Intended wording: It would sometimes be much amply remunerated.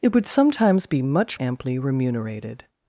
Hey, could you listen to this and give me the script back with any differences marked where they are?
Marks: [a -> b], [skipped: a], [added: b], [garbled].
It would sometimes be much amply remunerated.